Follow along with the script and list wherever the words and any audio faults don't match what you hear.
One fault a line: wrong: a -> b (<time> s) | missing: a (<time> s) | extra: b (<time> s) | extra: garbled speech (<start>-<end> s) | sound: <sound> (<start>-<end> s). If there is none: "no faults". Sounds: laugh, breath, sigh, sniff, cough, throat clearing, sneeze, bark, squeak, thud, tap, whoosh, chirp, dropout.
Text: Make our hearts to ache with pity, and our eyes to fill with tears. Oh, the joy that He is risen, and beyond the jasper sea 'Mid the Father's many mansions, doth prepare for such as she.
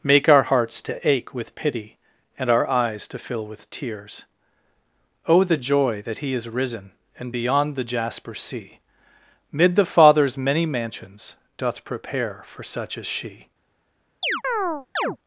sound: chirp (14.2-15.2 s)